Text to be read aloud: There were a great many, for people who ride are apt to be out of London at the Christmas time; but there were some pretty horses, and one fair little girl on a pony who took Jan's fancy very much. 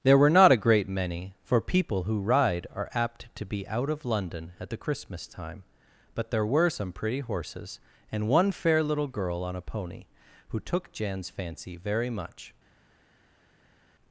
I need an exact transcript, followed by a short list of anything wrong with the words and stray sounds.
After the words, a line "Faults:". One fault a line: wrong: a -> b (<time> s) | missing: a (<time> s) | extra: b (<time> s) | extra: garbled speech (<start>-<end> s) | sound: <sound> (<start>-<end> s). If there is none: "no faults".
There were not a great many, for people who ride are apt to be out of London at the Christmas time; but there were some pretty horses, and one fair little girl on a pony who took Jan's fancy very much.
Faults:
extra: not (0.3 s)